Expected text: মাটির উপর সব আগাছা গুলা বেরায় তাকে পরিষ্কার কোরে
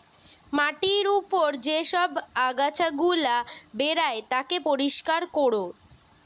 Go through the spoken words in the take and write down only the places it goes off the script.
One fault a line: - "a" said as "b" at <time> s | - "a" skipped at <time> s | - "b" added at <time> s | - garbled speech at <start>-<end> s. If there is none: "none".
- "যে" added at 1.7 s